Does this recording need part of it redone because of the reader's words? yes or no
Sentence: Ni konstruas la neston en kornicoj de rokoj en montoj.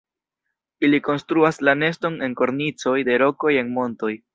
yes